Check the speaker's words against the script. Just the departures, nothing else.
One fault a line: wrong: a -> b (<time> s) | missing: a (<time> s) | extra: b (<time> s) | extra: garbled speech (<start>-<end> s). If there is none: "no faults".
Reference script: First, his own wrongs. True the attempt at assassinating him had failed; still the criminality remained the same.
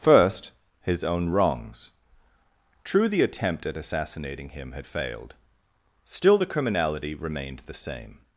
no faults